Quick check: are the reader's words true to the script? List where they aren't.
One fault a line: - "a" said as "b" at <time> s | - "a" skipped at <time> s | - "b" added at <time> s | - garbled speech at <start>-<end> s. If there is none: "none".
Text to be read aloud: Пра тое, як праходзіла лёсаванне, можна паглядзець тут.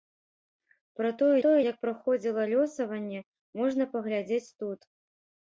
- "тое" added at 1.4 s